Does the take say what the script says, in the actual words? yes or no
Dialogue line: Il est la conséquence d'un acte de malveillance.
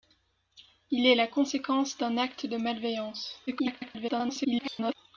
no